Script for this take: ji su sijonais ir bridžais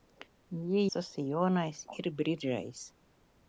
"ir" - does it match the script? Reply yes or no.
yes